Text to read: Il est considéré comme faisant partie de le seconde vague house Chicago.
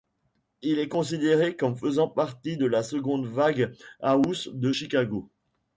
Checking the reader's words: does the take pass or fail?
fail